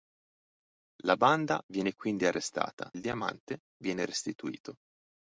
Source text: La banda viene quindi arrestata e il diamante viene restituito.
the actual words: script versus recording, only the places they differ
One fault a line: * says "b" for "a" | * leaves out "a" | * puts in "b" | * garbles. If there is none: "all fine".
* leaves out "e"